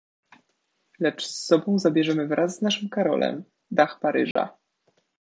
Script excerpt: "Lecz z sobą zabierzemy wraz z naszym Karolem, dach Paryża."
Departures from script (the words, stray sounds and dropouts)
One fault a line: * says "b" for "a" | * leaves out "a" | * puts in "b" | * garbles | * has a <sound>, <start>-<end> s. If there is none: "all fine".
* has a dropout, 4.3-4.4 s